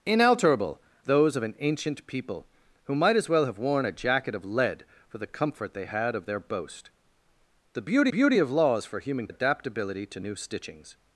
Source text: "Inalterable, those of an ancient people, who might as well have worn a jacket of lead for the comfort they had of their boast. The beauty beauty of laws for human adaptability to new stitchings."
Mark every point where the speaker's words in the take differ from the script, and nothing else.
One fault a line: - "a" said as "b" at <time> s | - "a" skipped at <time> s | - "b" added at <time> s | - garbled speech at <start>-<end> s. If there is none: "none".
none